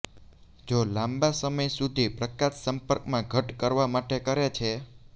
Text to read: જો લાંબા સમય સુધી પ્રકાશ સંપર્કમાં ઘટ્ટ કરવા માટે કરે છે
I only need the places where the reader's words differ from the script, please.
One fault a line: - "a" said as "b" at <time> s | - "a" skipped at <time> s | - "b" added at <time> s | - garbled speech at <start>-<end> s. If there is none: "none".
none